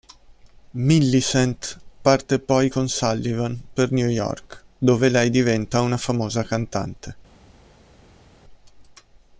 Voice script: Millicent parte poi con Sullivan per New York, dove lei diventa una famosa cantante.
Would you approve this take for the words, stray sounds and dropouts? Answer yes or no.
yes